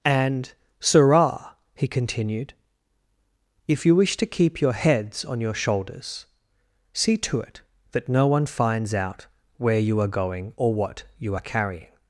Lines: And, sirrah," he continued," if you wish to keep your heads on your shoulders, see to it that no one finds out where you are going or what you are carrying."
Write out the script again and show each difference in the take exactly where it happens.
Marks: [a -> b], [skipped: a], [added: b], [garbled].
And, sirrah," he continued," if you wish to keep your heads on your shoulders, see to it that no one finds out where you are going or what you are carrying."